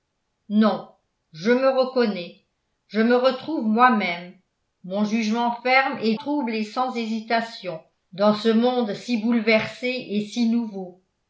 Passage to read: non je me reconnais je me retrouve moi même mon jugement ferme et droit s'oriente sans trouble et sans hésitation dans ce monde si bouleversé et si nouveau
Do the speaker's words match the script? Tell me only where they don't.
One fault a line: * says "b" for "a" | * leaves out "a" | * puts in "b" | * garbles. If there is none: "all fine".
* leaves out "droit s'oriente sans"